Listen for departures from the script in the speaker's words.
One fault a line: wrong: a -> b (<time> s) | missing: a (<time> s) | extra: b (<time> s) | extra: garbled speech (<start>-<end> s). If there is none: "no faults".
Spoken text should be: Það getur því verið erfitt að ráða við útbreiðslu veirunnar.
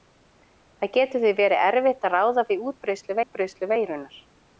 extra: útbreiðslu (3.2 s)